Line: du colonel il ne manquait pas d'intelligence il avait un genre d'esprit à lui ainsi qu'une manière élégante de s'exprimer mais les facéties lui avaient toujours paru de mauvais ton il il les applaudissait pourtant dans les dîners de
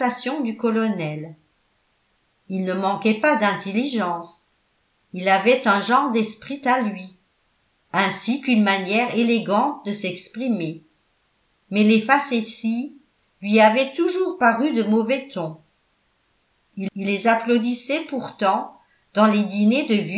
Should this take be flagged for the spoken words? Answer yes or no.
no